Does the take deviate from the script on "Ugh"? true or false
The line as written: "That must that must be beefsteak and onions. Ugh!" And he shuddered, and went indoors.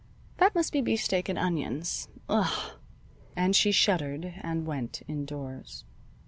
false